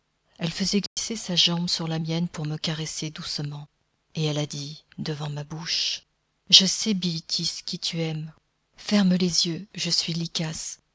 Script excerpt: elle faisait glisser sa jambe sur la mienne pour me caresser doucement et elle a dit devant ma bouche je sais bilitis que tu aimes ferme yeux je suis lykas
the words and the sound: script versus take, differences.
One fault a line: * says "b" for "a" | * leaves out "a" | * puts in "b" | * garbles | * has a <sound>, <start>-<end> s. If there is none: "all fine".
* has a dropout, 0.9-1.0 s
* says "qui" for "que"
* puts in "les"